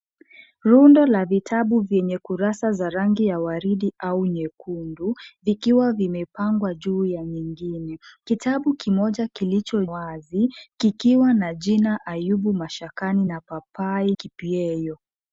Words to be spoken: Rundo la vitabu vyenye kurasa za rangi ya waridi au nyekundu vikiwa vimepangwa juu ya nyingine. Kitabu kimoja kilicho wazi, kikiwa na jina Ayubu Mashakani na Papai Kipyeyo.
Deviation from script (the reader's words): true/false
false